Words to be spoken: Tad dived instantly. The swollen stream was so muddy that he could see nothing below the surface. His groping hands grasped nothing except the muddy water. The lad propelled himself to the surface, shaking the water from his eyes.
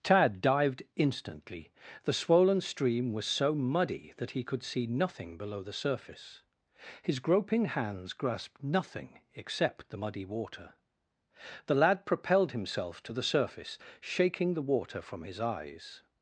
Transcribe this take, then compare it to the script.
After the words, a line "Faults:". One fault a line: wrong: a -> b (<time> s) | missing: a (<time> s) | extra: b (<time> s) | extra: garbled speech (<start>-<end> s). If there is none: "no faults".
Tad dived instantly. The swollen stream was so muddy that he could see nothing below the surface. His groping hands grasped nothing except the muddy water. The lad propelled himself to the surface, shaking the water from his eyes.
Faults:
no faults